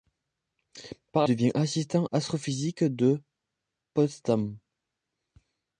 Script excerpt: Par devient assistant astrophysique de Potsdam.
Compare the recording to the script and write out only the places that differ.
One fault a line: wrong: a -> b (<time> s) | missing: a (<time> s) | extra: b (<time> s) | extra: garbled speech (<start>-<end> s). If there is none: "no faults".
no faults